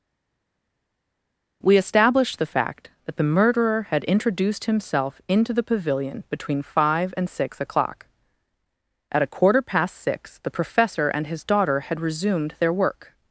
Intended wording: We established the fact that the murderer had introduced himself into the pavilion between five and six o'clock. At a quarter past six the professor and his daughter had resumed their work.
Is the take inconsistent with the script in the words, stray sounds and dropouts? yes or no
no